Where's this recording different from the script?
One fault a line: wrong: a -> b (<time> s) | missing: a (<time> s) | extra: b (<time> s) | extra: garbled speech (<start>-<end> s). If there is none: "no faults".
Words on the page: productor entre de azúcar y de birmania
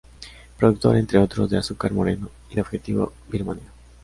extra: otros (1.2 s)
extra: moreno (1.9 s)
extra: objetivo (2.6 s)